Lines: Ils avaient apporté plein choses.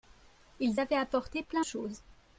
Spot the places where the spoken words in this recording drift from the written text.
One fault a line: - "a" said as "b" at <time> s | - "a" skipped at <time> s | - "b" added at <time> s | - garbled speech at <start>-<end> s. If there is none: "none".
none